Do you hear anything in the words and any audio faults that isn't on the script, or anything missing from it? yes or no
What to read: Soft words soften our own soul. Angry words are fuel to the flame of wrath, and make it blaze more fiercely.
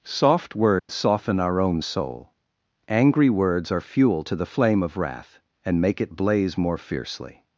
yes